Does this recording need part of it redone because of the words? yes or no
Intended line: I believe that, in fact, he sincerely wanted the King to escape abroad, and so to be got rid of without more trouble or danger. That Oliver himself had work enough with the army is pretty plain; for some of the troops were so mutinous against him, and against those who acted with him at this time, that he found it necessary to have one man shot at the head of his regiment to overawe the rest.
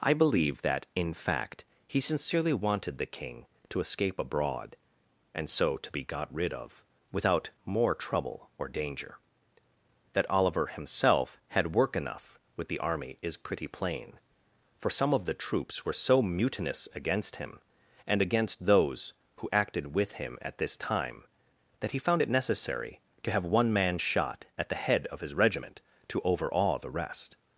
no